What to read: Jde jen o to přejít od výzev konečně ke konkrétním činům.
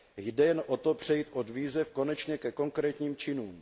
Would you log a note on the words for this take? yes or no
no